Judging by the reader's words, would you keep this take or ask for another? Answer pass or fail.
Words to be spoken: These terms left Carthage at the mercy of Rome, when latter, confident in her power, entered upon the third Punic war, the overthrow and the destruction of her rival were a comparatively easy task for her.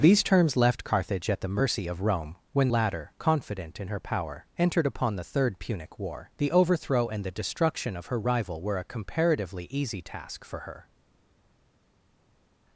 pass